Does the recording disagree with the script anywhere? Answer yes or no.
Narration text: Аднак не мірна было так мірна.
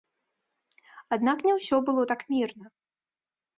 yes